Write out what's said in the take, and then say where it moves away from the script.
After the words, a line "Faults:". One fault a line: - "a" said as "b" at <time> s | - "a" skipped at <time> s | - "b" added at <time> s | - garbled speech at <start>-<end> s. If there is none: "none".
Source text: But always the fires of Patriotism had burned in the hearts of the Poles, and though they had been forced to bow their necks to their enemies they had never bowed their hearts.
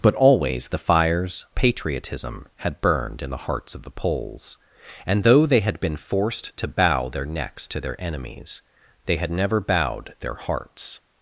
But always the fires Patriotism had burned in the hearts of the Poles, and though they had been forced to bow their necks to their enemies they had never bowed their hearts.
Faults:
- "of" skipped at 1.4 s